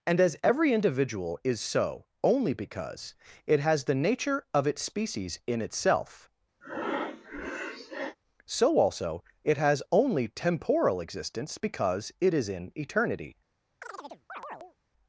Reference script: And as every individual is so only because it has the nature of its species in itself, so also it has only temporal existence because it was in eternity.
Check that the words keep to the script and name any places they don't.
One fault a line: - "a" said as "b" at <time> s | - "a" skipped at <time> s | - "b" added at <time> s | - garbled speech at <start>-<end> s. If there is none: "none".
- "was" said as "is" at 12.3 s